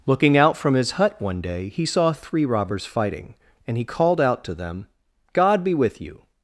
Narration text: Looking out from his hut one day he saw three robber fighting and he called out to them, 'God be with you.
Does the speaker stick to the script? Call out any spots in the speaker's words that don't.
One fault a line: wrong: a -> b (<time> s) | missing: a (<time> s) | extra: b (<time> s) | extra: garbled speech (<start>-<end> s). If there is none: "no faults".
wrong: robber -> robbers (2.5 s)